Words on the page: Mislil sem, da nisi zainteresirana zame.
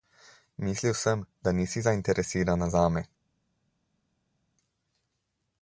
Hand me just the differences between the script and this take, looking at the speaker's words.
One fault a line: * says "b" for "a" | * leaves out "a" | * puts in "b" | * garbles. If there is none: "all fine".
all fine